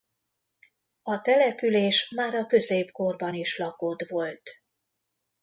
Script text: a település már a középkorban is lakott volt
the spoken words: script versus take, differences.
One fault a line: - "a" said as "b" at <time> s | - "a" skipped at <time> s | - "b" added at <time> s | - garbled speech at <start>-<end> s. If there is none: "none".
none